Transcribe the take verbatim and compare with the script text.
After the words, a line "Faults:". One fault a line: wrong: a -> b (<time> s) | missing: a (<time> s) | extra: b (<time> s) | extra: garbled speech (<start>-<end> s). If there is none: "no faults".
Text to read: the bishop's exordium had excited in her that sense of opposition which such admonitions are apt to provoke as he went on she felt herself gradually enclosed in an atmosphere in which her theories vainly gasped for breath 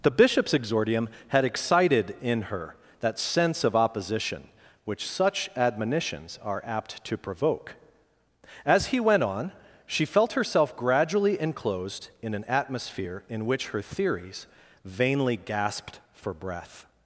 the bishop's exordium had excited in her that sense of opposition which such admonitions are apt to provoke as he went on she felt herself gradually enclosed in an atmosphere in which her theories vainly gasped for breath
Faults:
no faults